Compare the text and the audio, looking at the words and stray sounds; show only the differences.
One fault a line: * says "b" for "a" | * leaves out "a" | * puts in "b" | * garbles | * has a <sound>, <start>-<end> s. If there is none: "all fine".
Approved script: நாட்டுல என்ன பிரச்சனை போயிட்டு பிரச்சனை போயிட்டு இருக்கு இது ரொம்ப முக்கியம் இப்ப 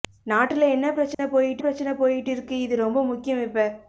* has a dropout, 1.1-1.2 s